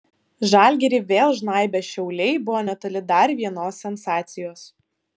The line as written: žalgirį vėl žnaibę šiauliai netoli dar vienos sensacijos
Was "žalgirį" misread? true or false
false